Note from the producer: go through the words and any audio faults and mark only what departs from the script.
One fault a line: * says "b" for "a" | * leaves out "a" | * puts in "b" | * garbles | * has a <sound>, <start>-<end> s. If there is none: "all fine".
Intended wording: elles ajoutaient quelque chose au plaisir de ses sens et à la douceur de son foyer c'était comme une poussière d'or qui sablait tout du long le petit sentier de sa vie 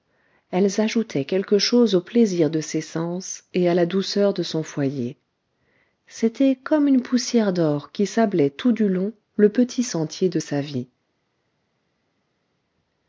all fine